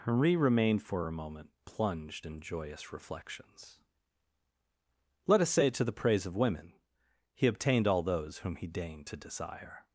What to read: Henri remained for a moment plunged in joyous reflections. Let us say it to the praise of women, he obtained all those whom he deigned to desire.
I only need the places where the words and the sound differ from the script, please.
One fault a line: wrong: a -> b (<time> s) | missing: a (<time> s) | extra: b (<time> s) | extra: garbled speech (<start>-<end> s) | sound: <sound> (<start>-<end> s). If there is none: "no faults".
missing: it (5.7 s)